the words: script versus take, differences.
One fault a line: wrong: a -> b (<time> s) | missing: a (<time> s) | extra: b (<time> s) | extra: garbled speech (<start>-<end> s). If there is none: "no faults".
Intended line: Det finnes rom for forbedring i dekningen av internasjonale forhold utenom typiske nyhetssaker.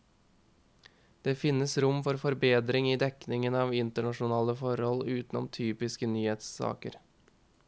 no faults